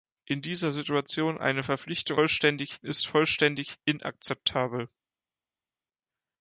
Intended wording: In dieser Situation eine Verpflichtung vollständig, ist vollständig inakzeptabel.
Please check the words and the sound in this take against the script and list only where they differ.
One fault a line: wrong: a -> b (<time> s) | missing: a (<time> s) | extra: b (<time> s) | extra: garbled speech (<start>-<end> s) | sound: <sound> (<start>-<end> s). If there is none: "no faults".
no faults